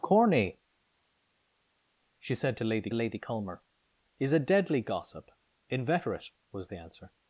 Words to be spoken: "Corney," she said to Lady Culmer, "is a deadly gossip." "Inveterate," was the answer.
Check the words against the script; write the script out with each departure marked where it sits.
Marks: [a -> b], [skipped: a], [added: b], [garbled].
"Corney," she said to Lady [added: Lady] Culmer, "is a deadly gossip." "Inveterate," was the answer.